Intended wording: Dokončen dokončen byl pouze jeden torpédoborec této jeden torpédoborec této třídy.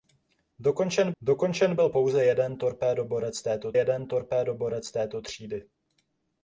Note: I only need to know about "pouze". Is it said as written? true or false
true